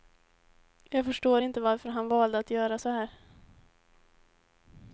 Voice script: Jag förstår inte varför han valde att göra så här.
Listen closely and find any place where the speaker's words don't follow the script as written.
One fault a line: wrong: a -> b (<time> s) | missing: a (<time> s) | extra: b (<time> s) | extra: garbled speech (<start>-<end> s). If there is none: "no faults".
no faults